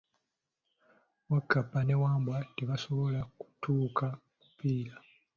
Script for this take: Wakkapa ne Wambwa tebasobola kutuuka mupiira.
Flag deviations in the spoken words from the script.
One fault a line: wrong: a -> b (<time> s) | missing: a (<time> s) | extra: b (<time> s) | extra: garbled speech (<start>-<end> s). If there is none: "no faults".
no faults